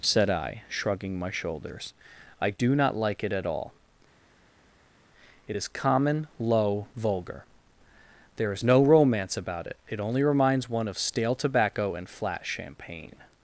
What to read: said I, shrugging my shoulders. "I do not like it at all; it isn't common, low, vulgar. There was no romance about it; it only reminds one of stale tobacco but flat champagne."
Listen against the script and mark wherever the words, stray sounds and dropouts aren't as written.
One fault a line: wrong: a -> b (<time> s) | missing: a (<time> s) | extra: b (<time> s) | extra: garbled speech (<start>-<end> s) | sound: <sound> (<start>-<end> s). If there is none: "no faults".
wrong: isn't -> is (5.5 s)
wrong: was -> is (8.5 s)
wrong: but -> and (11.9 s)